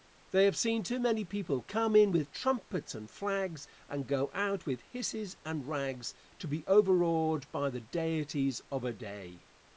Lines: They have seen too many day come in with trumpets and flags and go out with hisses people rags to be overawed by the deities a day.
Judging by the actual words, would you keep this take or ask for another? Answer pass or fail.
fail